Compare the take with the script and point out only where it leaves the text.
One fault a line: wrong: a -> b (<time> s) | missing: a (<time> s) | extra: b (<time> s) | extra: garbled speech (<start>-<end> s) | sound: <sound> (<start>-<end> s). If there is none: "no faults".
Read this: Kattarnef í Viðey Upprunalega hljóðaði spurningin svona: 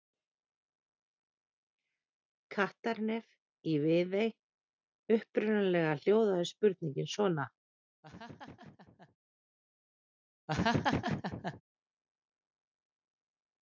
sound: laugh (8.0-9.2 s)
sound: laugh (10.5-11.6 s)